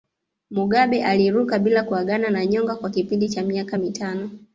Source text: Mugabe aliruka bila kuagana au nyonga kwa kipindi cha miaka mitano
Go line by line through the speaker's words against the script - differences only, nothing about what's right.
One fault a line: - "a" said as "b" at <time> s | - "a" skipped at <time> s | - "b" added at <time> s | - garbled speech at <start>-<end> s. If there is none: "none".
- "au" said as "na" at 2.3 s